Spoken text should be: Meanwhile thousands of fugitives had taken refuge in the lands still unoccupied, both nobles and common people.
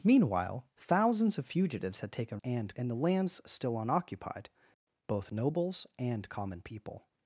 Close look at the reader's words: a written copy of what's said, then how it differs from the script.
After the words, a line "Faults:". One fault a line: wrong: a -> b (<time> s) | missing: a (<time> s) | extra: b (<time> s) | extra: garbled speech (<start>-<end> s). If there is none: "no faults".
Meanwhile thousands of fugitives had taken and in the lands still unoccupied, both nobles and common people.
Faults:
wrong: refuge -> and (2.4 s)